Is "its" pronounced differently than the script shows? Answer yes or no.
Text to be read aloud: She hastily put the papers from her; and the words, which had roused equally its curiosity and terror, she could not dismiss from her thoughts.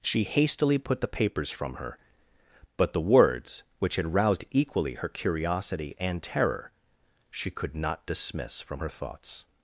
yes